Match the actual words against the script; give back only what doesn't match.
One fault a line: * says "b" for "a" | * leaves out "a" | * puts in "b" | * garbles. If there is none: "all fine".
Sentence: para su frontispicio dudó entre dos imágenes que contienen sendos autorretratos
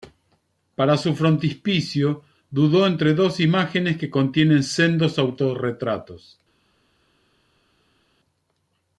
all fine